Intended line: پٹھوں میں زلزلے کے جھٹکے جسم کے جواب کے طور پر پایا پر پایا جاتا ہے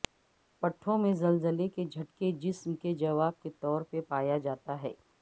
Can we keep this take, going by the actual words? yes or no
no